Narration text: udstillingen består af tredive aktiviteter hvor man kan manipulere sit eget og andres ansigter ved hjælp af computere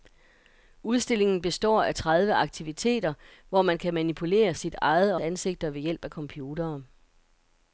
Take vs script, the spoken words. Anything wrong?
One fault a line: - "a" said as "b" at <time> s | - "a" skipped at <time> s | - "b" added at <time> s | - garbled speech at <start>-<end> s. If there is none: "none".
- "og andres" skipped at 5.2 s